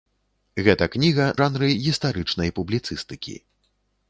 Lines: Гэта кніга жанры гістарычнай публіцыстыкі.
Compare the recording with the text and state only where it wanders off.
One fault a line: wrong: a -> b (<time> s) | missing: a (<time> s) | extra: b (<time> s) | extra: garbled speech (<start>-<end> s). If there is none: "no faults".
no faults